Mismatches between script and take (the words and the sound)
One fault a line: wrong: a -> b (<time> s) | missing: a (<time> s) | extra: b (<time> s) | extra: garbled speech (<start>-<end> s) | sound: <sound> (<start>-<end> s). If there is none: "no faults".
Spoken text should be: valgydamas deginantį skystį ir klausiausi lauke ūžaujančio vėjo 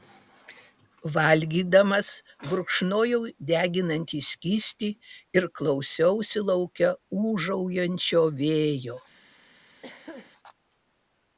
extra: gurkšnojau (2.5 s)
sound: throat clearing (9.8-10.3 s)